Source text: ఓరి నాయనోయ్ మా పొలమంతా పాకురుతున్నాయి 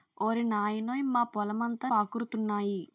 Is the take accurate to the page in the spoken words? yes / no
yes